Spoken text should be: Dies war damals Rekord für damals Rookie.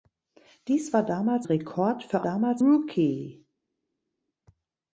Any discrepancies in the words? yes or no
no